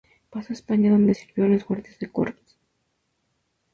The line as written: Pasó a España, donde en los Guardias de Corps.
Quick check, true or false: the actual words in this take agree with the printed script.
false